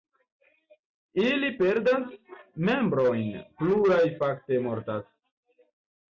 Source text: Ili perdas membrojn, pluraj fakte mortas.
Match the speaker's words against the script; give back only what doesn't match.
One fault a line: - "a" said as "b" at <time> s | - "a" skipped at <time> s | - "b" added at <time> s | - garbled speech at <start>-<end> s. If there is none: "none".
none